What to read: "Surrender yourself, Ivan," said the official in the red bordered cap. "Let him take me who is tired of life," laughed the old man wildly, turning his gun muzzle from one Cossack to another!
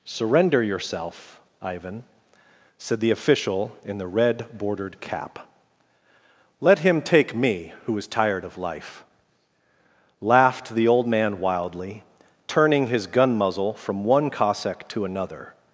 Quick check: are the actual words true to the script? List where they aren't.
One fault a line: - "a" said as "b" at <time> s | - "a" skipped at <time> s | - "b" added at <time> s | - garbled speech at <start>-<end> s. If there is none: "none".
none